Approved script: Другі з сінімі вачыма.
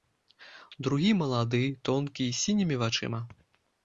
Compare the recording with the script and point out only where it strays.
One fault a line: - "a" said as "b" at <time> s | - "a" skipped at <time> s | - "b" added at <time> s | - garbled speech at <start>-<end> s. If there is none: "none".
- "малады тонкі" added at 1.2 s